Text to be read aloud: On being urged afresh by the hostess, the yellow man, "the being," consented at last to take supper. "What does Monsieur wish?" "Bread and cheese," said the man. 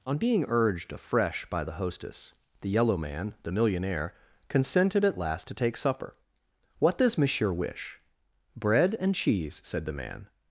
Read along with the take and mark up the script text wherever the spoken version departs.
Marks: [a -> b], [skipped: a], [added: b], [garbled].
On being urged afresh by the hostess, the yellow man, "the [being," -> millionaire] consented at last to take supper. "What does Monsieur wish?" "Bread and cheese," said the man.